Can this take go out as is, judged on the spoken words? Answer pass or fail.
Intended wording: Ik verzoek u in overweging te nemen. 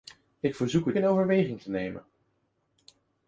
pass